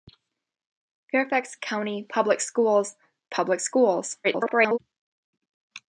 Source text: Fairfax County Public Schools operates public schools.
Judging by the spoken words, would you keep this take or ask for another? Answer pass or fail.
fail